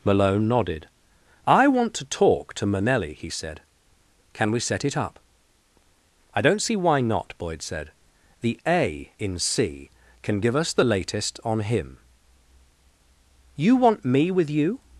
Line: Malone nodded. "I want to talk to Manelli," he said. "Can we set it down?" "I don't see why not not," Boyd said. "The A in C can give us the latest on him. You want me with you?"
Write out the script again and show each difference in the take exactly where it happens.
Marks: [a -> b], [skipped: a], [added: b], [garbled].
Malone nodded. "I want to talk to Manelli," he said. "Can we set it [down?" -> up] "I don't see why not [skipped: not,"] Boyd said. "The A in C can give us the latest on him. You want me with you?"